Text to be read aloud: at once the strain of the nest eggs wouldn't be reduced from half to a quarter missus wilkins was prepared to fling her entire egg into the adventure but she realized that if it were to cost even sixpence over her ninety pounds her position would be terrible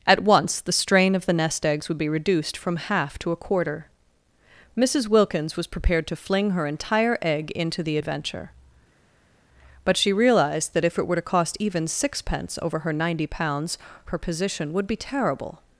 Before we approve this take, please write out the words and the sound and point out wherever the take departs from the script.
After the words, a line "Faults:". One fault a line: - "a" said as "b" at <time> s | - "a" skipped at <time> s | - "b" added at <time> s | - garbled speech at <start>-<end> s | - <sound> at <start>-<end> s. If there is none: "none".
at once the strain of the nest eggs would be reduced from half to a quarter missus wilkins was prepared to fling her entire egg into the adventure but she realized that if it were to cost even sixpence over her ninety pounds her position would be terrible
Faults:
- "wouldn't" said as "would" at 1.9 s